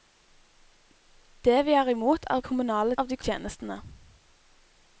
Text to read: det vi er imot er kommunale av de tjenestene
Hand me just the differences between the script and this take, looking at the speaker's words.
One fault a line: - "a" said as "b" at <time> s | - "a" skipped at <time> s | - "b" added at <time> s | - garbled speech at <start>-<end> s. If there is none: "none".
none